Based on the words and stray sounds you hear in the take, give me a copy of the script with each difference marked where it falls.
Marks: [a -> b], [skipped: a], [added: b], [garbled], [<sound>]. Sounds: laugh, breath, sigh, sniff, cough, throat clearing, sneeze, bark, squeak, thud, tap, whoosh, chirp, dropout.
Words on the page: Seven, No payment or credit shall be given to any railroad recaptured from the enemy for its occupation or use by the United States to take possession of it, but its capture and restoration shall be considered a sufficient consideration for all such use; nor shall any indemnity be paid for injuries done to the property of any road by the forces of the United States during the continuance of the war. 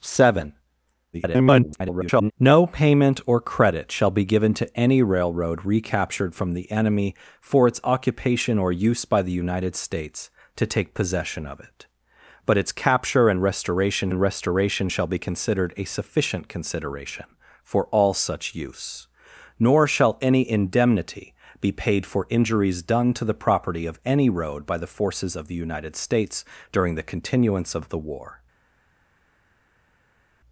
Seven, [garbled] No payment or credit shall be given to any railroad recaptured from the enemy for its occupation or use by the United States to take possession of it, but its capture and restoration [added: and restoration] shall be considered a sufficient consideration for all such use; nor shall any indemnity be paid for injuries done to the property of any road by the forces of the United States during the continuance of the war.